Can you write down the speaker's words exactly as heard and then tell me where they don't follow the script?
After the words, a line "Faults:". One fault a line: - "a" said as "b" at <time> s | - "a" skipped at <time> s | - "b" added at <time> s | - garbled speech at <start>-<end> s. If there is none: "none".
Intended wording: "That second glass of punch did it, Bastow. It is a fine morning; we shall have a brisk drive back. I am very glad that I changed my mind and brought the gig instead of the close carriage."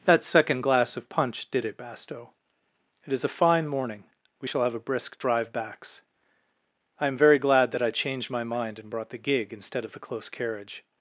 "That second glass of punch did it, Bastow. It is a fine morning; we shall have a brisk drive backs. I am very glad that I changed my mind and brought the gig instead of the close carriage."
Faults:
- "back" said as "backs" at 5.5 s